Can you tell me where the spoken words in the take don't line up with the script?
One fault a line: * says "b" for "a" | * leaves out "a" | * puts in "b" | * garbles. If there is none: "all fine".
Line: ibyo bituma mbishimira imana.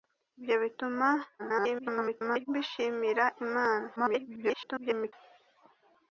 * garbles
* garbles